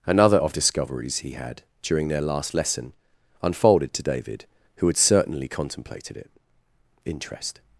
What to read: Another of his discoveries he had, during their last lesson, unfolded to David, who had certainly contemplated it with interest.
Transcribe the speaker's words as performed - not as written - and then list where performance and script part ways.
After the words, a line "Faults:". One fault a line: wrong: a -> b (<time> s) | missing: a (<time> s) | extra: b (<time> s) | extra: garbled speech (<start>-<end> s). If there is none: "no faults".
Another of discoveries he had, during their last lesson, unfolded to David, who had certainly contemplated it interest.
Faults:
missing: his (0.5 s)
missing: with (6.3 s)